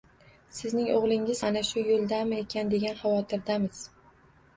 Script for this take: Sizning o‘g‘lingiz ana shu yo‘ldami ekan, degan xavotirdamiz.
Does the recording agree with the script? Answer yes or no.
yes